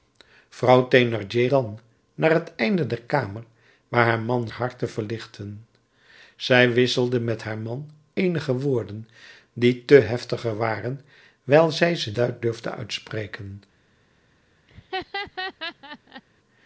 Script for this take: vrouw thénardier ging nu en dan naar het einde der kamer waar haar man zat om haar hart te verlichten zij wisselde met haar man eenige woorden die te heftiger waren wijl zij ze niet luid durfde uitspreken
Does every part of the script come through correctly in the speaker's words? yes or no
no